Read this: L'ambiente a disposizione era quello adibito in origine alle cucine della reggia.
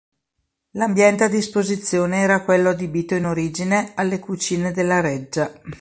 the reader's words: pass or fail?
pass